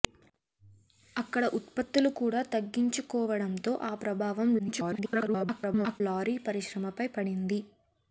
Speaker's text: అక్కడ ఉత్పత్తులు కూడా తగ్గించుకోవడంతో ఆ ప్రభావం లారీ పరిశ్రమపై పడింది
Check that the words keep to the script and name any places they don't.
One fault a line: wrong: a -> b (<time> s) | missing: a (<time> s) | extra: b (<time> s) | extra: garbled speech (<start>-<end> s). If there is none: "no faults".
extra: garbled speech (4.6-6.0 s)